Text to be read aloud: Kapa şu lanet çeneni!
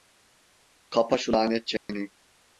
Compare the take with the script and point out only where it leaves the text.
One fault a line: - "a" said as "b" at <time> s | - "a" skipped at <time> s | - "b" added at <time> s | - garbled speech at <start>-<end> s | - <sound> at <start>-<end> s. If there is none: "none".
- dropout at 1.8-1.9 s